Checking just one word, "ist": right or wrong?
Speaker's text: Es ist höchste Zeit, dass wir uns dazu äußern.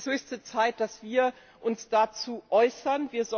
wrong